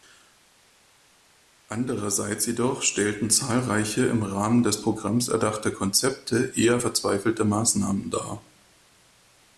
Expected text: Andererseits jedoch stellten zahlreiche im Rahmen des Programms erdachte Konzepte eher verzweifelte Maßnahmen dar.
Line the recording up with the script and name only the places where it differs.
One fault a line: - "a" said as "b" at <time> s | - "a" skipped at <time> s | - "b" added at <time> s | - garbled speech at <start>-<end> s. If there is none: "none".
none